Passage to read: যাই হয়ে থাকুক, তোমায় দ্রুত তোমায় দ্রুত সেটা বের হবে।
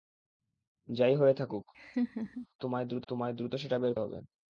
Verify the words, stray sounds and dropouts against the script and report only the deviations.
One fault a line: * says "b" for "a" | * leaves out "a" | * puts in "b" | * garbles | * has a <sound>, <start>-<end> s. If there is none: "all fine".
* has a laugh, 1.7-2.5 s